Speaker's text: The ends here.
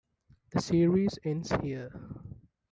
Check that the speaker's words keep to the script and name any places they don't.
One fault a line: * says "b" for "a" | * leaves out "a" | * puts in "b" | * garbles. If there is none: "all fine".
* puts in "series"